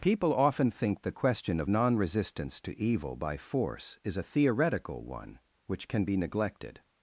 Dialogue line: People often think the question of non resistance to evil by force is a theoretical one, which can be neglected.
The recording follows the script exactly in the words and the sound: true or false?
true